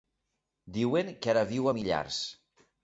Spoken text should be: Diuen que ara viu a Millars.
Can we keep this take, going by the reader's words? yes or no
yes